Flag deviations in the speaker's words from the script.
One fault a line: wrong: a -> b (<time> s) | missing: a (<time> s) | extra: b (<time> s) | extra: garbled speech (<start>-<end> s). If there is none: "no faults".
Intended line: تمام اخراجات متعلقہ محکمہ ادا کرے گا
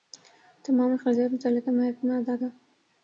missing: کرے (2.4 s)